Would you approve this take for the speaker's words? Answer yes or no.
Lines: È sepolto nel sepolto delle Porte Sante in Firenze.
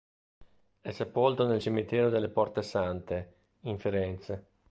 no